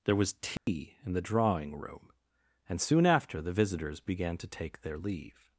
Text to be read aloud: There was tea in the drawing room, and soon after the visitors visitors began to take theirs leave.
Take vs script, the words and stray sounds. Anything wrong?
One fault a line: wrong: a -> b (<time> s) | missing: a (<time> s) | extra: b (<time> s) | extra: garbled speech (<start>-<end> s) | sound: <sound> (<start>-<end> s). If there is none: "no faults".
sound: dropout (0.6-0.7 s)
missing: visitors (4.0 s)
wrong: theirs -> their (4.8 s)